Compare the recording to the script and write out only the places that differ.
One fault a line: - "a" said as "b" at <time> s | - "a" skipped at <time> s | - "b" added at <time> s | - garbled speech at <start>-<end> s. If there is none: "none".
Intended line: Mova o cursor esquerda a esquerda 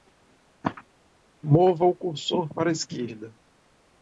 - "esquerda" said as "para" at 2.5 s